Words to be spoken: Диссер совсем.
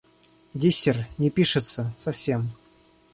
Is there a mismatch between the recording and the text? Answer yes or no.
yes